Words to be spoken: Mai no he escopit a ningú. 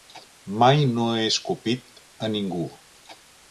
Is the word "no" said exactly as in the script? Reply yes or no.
yes